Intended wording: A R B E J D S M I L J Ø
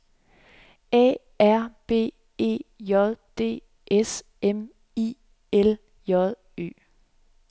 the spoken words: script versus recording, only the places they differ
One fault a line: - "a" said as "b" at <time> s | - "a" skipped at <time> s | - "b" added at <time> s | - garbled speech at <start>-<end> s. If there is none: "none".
none